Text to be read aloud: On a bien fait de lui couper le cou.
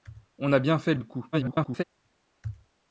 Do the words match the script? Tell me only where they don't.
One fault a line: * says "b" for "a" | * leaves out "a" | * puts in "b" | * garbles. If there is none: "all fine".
* leaves out "lui couper"
* garbles